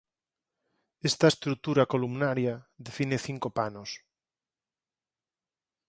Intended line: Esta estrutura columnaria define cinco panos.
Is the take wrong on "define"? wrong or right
right